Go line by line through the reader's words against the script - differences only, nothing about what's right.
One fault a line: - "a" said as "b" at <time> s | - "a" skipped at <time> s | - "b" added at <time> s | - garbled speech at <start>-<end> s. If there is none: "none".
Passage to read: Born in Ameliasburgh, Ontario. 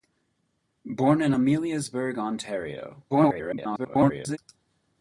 - garbled speech at 3.1-4.4 s